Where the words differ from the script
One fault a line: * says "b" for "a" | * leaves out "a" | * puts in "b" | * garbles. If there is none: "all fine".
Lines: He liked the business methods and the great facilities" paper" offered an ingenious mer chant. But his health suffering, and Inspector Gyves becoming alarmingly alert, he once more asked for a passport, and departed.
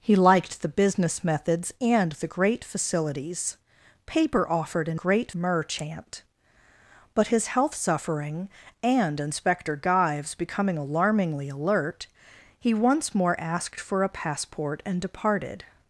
* says "great" for "ingenious"